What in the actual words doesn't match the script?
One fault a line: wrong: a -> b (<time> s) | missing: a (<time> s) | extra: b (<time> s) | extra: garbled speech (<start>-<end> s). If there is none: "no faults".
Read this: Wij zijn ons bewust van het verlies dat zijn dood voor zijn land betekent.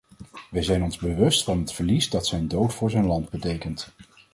no faults